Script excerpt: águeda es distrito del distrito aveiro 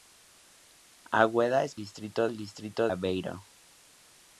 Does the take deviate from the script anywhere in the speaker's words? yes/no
no